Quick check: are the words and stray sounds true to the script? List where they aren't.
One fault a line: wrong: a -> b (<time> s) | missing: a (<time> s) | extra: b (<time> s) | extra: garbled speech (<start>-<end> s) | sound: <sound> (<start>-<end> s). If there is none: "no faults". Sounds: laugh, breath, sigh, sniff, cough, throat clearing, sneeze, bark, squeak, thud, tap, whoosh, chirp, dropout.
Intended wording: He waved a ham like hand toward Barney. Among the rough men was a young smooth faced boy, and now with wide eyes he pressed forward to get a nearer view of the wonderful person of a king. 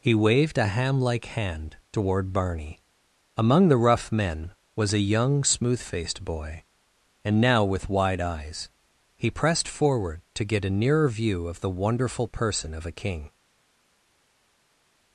no faults